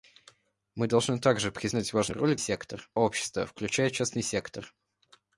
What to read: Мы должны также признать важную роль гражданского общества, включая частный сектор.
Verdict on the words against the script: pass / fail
fail